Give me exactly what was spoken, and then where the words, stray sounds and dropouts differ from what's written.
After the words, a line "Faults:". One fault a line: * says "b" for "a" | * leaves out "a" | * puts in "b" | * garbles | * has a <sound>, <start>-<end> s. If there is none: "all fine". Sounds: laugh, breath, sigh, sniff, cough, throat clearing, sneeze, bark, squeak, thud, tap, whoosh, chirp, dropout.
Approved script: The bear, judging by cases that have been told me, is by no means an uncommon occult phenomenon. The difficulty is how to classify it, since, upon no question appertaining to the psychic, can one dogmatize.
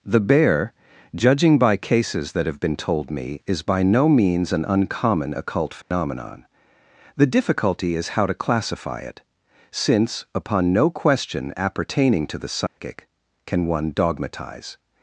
The bear, judging by cases that have been told me, is by no means an uncommon occult phenomenon. The difficulty is how to classify it, since, upon no question appertaining to the psychic, can one dogmatize.
Faults:
* has a dropout, 5.8-5.9 s
* has a dropout, 12.7-12.8 s